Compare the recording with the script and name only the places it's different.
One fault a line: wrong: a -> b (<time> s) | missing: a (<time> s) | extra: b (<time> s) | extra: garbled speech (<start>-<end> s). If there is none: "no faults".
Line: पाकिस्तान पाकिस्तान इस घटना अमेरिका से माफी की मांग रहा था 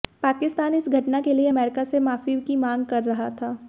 missing: पाकिस्तान (0.8 s)
extra: के लिए (1.2 s)
extra: कर (2.9 s)